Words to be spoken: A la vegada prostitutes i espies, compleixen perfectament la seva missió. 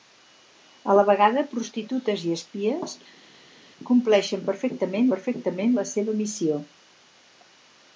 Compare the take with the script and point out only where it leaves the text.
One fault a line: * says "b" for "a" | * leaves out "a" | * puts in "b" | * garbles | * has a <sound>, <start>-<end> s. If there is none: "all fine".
* puts in "perfectament"